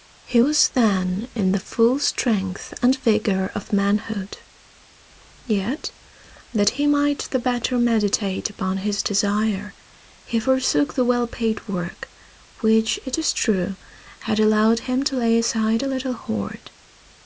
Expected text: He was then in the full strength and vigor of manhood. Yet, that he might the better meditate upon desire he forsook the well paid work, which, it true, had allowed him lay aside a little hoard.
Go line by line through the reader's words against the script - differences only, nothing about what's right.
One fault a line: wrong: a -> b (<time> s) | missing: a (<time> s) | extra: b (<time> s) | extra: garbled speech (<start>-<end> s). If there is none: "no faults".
extra: his (8.8 s)
extra: is (13.2 s)
extra: to (15.0 s)